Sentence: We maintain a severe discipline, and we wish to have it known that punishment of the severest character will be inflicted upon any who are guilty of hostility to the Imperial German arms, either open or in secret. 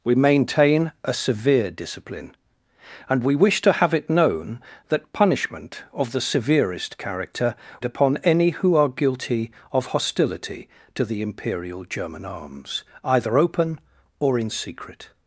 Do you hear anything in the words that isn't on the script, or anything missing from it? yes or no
yes